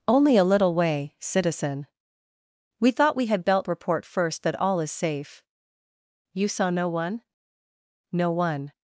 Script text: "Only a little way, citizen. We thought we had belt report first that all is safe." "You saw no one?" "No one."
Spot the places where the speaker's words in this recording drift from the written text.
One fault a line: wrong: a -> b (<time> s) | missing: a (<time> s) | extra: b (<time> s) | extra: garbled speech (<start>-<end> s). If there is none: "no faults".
no faults